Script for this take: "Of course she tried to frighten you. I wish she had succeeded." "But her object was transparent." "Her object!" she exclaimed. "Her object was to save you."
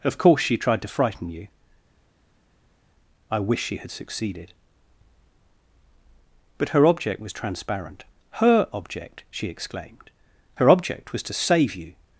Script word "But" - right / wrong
right